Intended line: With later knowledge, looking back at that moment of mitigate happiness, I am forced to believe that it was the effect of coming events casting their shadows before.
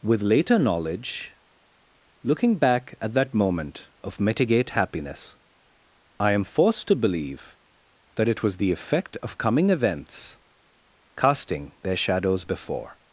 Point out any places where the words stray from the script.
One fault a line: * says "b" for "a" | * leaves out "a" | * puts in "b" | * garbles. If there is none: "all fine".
all fine